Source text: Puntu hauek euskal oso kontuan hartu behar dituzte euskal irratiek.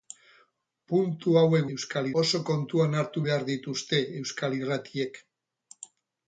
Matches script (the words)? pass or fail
pass